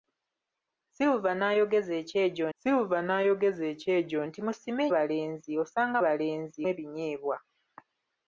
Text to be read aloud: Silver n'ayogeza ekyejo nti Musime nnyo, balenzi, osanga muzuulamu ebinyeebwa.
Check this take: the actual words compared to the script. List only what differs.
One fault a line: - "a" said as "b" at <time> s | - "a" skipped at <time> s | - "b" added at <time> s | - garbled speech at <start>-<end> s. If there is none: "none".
- "silver n'ayogeza ekyejo" added at 2.6 s
- "nnyo" skipped at 4.8 s
- "muzuulamu" said as "balenzi" at 6.0 s